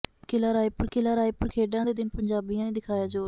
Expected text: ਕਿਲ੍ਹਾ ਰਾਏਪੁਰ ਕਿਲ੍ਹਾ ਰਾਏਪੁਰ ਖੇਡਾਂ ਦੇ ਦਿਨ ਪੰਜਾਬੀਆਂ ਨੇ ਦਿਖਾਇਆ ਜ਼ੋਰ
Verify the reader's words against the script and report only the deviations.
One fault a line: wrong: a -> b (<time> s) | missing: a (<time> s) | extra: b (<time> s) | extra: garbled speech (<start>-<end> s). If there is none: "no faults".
no faults